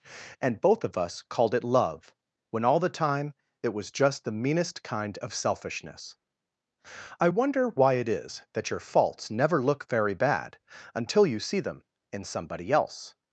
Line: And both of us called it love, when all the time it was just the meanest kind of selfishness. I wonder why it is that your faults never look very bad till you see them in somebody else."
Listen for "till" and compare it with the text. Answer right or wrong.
wrong